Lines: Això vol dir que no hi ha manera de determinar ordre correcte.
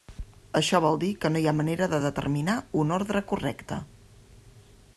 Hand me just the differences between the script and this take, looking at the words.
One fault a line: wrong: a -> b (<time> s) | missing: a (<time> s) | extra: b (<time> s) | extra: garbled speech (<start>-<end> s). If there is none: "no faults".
extra: un (2.8 s)